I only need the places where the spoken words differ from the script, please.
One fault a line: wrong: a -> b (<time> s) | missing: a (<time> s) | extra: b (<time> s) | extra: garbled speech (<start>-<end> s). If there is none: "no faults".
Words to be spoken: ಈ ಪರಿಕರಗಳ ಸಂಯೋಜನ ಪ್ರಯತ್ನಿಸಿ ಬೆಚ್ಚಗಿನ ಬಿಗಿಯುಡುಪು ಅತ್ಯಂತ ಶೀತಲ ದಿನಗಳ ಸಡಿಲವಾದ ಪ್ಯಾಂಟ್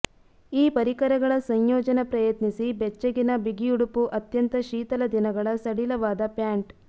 no faults